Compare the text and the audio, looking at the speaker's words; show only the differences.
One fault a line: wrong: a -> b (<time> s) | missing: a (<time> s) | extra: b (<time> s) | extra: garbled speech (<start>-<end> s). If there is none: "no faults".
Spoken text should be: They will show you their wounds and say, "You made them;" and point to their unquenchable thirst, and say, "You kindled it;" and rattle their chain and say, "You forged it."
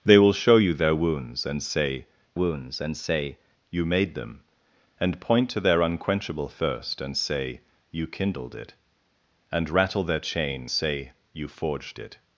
extra: wounds and say (2.3 s)
missing: and (10.7 s)